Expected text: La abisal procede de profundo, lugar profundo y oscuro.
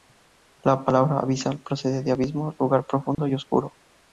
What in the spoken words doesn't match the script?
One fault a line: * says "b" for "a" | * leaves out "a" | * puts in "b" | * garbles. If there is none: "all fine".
* puts in "palabra"
* says "abismo" for "profundo"